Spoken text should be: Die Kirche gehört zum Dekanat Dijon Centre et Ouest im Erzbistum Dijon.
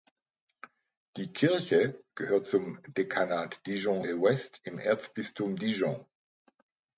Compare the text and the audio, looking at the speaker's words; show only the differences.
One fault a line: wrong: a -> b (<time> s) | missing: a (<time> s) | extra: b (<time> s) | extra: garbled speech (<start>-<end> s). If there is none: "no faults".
missing: Centre (4.0 s)